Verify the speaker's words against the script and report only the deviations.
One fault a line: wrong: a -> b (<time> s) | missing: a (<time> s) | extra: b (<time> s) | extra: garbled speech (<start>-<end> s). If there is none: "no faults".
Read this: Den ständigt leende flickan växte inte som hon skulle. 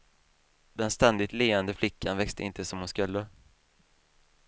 no faults